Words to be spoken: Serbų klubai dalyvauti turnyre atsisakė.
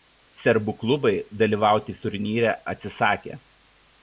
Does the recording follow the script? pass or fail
pass